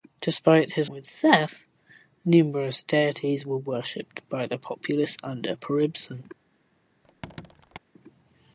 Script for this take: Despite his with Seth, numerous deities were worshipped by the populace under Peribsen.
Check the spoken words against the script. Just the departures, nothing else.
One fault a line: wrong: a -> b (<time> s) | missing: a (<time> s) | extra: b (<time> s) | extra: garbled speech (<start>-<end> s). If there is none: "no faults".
no faults